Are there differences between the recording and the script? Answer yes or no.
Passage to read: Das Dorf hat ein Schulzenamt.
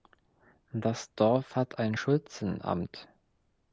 no